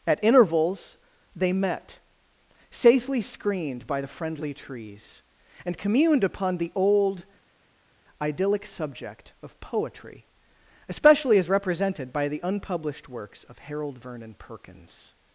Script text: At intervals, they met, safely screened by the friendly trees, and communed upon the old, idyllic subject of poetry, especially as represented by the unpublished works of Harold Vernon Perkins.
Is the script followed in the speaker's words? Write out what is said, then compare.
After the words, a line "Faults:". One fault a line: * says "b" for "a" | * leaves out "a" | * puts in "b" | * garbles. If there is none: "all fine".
At intervals, they met, safely screened by the friendly trees, and communed upon the old, idyllic subject of poetry, especially as represented by the unpublished works of Harold Vernon Perkins.
Faults:
all fine